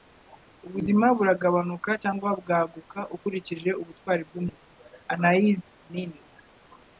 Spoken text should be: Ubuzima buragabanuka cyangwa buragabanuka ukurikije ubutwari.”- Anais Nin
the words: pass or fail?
fail